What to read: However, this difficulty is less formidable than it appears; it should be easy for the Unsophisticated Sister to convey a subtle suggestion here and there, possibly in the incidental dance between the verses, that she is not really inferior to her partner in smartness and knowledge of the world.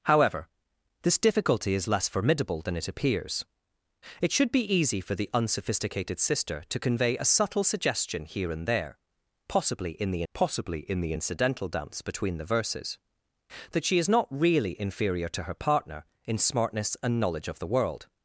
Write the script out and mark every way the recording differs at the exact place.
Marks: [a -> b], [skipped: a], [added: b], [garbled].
However, this difficulty is less formidable than it appears; it should be easy for the Unsophisticated Sister to convey a subtle suggestion here and there, possibly in the [added: possibly in the] incidental dance between the verses, that she is not really inferior to her partner in smartness and knowledge of the world.